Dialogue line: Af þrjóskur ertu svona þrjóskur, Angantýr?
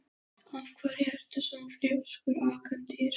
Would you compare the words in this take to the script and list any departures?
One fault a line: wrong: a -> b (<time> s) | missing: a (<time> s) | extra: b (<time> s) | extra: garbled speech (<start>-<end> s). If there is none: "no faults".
wrong: þrjóskur -> hverju (0.8 s)